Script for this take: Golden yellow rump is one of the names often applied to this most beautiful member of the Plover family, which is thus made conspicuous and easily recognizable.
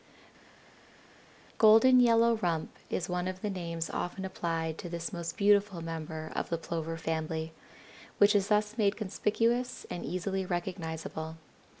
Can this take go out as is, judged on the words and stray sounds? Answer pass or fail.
pass